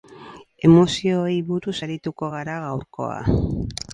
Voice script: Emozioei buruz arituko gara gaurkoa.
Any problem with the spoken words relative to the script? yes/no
no